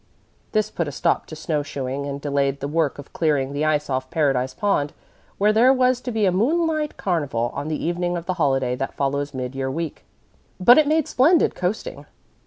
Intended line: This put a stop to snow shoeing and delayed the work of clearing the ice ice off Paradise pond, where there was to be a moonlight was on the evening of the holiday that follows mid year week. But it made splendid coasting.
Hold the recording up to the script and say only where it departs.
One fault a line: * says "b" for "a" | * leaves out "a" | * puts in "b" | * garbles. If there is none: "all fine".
* leaves out "ice"
* says "carnival" for "was"